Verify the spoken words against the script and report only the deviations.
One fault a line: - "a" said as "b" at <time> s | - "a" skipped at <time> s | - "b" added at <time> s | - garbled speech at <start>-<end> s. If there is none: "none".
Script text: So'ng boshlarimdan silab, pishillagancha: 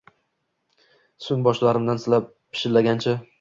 none